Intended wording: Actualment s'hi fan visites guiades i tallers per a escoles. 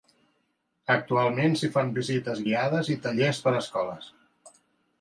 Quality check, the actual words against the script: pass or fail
pass